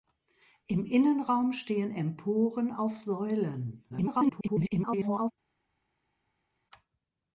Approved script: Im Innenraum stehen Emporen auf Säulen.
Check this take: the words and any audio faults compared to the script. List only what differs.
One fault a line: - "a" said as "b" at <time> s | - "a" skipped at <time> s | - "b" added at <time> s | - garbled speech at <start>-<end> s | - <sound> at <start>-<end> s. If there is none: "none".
- garbled speech at 3.9-5.3 s